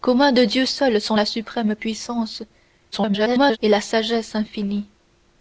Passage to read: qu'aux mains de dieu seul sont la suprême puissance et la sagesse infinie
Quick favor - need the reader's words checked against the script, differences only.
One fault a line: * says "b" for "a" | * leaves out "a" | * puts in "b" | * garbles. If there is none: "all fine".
* garbles